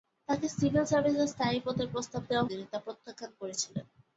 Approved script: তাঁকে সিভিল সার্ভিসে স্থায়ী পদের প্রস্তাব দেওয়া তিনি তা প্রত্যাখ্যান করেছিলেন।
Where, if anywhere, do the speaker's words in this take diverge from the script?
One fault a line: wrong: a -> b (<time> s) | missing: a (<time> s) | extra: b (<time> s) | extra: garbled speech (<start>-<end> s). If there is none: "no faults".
no faults